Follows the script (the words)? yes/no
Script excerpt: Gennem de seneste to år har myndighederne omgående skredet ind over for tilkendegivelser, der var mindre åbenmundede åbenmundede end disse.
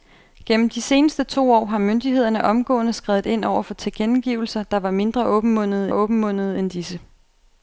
yes